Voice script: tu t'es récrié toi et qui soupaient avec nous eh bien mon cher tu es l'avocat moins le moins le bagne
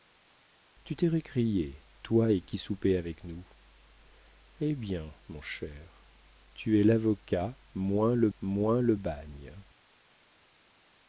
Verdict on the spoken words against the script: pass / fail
pass